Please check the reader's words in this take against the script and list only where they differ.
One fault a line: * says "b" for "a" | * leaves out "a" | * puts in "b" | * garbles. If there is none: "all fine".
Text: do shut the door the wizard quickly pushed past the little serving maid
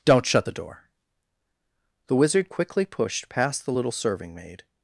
* says "don't" for "do"